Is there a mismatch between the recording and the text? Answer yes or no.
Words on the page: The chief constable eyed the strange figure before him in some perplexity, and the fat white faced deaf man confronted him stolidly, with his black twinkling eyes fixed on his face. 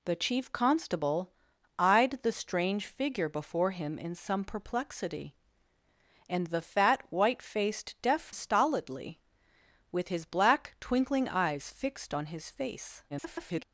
yes